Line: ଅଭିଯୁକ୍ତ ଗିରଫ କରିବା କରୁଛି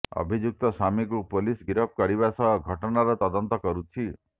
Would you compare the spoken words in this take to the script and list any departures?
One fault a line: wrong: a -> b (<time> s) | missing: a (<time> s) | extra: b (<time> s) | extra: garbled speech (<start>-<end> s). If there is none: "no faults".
extra: ସ୍ୱାମୀକୁ ପୋଲିସ (0.7 s)
extra: ସହ ଘଟଣାର ତଦନ୍ତ (2.4 s)